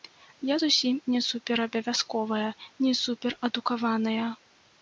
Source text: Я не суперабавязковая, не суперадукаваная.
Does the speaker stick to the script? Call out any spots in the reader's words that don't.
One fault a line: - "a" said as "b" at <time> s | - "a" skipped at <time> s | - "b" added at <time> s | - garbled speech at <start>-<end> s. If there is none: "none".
- "зусім" added at 0.6 s